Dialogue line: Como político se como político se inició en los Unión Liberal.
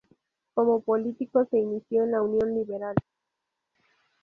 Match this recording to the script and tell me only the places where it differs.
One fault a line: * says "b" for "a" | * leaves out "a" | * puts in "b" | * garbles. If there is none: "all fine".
* leaves out "como político se"
* says "la" for "los"